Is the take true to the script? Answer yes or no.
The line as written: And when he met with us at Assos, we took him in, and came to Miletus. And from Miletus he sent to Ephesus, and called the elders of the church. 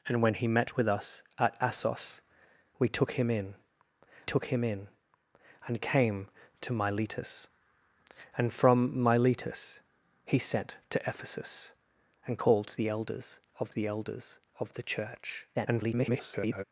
no